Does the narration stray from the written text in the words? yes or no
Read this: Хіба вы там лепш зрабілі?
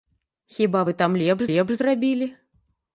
yes